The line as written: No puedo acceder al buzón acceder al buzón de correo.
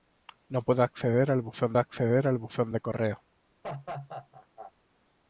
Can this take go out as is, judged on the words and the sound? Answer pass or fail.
fail